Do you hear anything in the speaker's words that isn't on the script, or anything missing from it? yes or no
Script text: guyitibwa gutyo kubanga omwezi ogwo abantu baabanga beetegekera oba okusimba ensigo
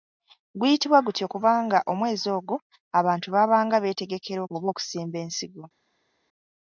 no